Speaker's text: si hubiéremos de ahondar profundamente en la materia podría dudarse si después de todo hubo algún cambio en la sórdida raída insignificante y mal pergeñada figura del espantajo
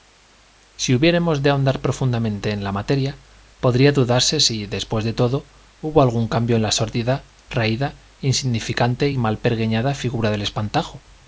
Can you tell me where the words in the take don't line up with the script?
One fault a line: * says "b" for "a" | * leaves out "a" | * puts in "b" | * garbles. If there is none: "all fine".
all fine